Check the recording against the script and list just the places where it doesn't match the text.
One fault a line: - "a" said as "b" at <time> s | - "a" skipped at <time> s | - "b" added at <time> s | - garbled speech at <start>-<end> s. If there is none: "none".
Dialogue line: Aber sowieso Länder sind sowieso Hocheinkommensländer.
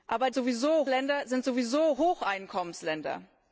none